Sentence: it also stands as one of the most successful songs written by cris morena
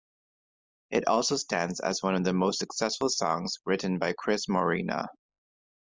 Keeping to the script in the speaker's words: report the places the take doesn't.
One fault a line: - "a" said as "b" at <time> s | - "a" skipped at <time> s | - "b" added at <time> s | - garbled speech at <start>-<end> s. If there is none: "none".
none